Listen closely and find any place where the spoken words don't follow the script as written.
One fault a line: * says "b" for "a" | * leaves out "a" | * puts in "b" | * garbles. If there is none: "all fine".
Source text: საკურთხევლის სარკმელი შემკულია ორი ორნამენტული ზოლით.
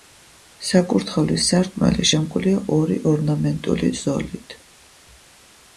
all fine